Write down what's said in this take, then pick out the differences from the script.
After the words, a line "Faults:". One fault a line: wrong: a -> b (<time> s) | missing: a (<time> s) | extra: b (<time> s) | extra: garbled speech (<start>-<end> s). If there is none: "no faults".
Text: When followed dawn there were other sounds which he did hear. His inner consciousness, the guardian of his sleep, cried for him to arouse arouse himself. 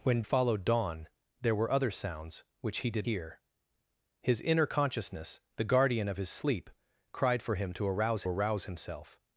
When followed dawn there were other sounds which he did hear. His inner consciousness, the guardian of his sleep, cried for him to arouse arouse himself.
Faults:
no faults